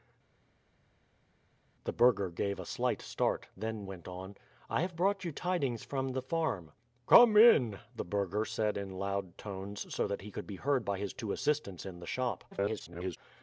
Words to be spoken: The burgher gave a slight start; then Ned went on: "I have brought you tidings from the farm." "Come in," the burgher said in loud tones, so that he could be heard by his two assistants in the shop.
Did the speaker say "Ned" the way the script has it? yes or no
no